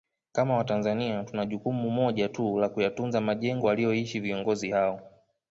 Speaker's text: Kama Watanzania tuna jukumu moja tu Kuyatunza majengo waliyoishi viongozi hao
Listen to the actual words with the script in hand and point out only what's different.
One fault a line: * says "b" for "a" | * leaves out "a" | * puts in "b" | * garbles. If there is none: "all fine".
* puts in "la"